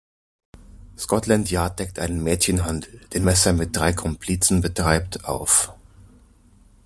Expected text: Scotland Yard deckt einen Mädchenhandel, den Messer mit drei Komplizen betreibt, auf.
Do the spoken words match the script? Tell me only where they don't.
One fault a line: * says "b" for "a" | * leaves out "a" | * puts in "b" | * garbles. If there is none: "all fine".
all fine